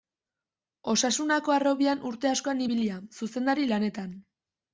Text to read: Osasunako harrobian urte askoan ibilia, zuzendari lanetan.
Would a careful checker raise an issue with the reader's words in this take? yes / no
no